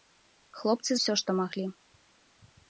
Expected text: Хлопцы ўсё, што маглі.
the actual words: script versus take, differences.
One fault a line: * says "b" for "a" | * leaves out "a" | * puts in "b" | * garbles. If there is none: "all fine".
all fine